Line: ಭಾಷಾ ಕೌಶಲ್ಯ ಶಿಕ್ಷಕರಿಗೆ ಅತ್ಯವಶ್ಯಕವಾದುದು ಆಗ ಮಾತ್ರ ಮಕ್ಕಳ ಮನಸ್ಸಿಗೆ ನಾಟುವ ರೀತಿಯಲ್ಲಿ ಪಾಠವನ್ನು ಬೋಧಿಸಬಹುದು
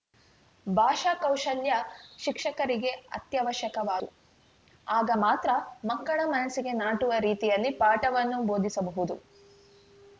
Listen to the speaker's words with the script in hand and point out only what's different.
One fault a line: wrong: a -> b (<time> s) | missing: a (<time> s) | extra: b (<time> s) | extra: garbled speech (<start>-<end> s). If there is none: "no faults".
no faults